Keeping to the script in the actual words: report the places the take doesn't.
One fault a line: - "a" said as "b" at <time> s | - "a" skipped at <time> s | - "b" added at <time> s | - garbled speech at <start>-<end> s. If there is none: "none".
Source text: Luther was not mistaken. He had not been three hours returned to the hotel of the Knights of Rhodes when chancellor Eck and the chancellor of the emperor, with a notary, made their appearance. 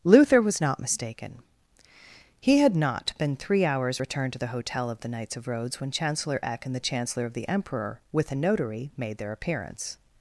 none